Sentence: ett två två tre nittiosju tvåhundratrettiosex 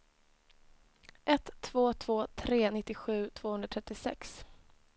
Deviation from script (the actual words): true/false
false